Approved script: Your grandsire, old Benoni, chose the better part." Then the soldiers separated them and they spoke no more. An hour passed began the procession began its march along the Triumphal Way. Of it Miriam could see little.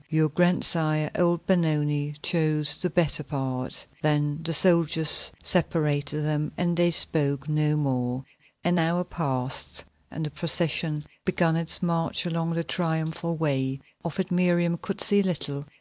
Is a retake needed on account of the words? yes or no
yes